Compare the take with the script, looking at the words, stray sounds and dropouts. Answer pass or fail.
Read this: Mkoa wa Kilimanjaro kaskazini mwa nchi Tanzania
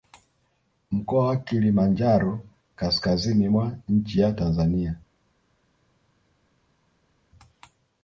fail